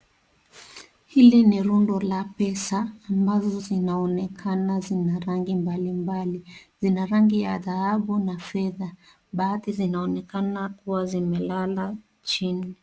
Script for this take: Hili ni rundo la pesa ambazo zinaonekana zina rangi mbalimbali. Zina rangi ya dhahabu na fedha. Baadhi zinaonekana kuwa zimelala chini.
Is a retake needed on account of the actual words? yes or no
no